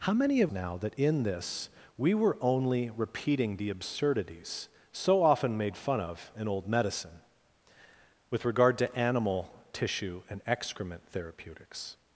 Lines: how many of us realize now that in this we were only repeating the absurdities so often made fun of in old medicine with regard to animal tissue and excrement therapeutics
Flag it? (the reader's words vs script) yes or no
yes